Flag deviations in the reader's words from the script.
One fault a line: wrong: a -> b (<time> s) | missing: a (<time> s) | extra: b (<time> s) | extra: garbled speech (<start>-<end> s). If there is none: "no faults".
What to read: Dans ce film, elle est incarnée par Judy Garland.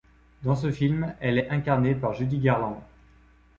no faults